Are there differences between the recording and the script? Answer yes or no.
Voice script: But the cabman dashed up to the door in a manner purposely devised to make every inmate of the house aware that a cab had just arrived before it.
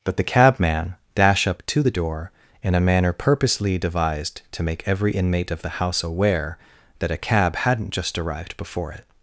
yes